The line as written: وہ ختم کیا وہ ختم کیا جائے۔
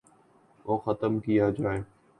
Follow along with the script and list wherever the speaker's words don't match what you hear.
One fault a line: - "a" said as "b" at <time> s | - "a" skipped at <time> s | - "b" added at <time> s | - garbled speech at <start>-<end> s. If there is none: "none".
- "وہ ختم کیا" skipped at 1.5 s